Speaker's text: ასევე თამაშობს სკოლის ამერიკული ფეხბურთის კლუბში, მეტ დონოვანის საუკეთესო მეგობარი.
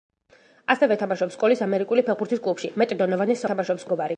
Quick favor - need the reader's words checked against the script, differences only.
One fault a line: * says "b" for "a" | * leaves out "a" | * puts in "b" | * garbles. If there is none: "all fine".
* says "თამაშობს" for "საუკეთესო"